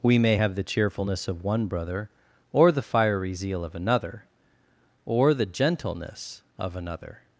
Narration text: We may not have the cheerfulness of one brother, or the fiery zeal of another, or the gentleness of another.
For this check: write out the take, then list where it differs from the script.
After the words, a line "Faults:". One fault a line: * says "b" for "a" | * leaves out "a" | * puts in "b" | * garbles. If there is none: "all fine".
We may have the cheerfulness of one brother, or the fiery zeal of another, or the gentleness of another.
Faults:
* leaves out "not"